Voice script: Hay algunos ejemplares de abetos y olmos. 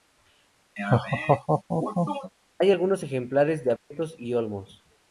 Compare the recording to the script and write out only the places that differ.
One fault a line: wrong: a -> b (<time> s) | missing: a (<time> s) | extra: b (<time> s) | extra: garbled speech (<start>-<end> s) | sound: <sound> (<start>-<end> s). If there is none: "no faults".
sound: laugh (0.8-2.3 s)
sound: dropout (3.8-3.9 s)